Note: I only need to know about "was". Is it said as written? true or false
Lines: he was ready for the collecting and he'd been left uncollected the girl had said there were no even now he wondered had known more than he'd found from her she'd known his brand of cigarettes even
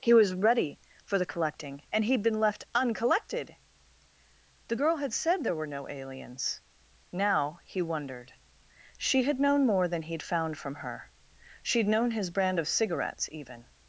true